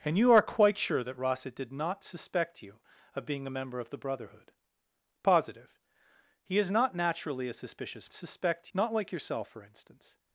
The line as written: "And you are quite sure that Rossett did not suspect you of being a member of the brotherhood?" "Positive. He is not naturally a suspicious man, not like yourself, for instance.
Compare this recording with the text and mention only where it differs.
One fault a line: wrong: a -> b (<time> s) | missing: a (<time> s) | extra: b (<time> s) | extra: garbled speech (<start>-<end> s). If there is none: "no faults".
wrong: man -> suspect (8.1 s)